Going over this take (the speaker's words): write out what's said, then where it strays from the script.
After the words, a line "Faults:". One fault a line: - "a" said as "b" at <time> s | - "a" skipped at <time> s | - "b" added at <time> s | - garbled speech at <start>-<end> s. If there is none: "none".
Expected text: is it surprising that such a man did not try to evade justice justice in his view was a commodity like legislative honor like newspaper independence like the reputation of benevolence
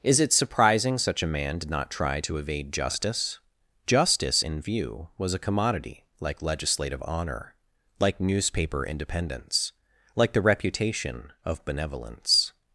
is it surprising such a man did not try to evade justice justice in view was a commodity like legislative honor like newspaper independence like the reputation of benevolence
Faults:
- "that" skipped at 1.0 s
- "his" skipped at 4.6 s